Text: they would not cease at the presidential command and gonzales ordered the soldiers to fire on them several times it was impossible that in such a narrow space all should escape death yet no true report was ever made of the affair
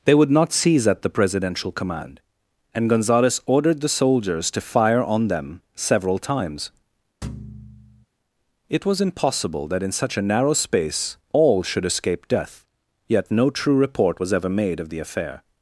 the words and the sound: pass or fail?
fail